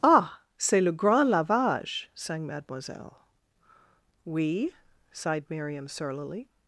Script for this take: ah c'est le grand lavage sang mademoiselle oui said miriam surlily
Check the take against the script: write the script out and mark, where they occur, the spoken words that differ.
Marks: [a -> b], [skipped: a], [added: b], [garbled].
ah c'est le grand lavage sang mademoiselle oui [said -> sighed] miriam surlily